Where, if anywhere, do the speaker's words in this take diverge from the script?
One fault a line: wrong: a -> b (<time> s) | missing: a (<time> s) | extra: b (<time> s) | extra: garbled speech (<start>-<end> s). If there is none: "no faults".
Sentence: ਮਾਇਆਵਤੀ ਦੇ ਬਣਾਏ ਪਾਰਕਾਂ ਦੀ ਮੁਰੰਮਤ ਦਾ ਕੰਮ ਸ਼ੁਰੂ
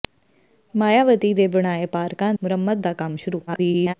missing: ਦੀ (2.3 s)
extra: garbled speech (3.5-3.9 s)